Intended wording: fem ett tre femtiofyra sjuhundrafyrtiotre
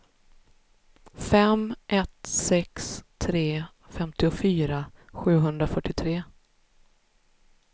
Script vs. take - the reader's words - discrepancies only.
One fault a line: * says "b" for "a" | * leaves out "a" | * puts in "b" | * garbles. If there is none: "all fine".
* puts in "sex"